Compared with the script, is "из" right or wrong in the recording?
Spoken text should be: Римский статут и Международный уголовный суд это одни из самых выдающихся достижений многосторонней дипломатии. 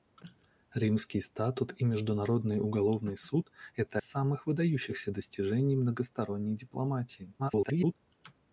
wrong